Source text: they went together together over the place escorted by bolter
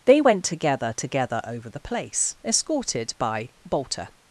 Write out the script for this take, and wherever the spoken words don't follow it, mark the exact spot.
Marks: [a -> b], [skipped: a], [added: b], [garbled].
they went together together over the place escorted by bolter